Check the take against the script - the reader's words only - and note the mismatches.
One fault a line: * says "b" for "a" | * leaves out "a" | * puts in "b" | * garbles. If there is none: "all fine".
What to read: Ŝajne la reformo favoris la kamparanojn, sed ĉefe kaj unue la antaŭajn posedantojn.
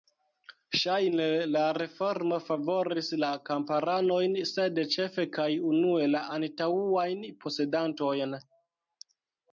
all fine